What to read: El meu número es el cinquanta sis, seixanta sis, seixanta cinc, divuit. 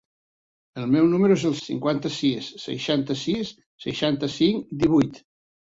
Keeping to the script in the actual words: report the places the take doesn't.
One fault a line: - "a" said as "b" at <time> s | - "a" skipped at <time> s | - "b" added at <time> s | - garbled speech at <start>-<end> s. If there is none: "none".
none